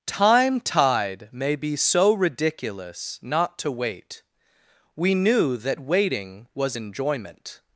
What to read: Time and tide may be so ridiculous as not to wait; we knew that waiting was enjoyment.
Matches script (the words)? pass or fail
fail